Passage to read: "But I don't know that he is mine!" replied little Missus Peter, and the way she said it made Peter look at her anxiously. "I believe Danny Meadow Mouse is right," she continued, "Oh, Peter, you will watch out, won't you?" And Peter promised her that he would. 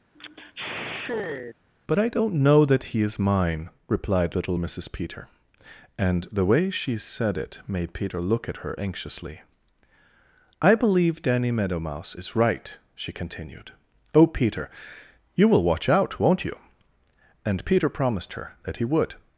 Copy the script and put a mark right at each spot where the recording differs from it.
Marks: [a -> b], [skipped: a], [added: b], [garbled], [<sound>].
[sigh] "But I don't know that he is mine!" replied little Missus Peter, and the way she said it made Peter look at her anxiously. "I believe Danny Meadow Mouse is right," she continued, "Oh, Peter, you will watch out, won't you?" And Peter promised her that he would.